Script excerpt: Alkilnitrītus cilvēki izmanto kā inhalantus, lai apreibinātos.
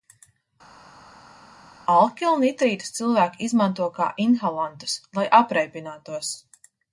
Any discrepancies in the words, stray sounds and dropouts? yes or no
no